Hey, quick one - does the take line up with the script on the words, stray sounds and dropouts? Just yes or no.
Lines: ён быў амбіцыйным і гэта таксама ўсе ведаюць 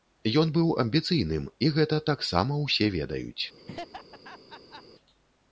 no